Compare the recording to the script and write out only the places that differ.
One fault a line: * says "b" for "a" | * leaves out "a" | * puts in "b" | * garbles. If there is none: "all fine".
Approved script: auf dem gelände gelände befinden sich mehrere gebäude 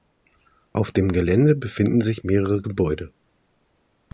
* leaves out "gelände"